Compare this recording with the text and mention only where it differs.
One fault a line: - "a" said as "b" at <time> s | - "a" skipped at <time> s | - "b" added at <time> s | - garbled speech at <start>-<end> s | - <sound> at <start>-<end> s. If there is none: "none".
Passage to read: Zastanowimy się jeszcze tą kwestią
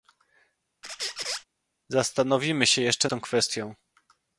- squeak at 0.8-1.4 s